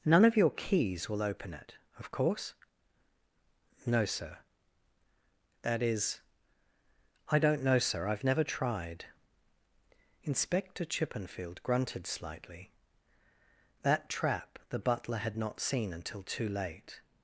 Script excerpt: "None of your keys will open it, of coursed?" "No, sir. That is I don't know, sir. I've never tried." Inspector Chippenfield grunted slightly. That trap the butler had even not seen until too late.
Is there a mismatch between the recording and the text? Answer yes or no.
yes